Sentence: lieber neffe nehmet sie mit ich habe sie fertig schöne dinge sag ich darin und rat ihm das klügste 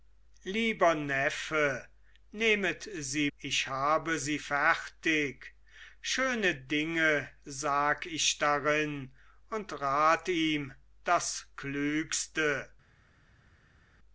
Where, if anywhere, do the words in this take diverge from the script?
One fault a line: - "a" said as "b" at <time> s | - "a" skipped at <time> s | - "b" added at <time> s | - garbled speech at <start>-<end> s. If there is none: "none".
- "mit" skipped at 3.3 s